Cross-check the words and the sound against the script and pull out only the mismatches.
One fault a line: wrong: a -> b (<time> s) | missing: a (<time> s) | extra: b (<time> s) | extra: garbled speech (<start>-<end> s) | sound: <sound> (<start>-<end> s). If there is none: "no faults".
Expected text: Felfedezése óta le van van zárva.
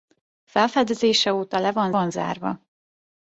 no faults